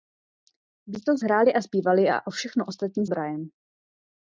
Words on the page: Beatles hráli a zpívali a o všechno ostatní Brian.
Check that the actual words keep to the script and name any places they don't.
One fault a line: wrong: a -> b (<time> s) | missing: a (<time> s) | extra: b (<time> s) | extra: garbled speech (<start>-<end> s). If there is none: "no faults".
no faults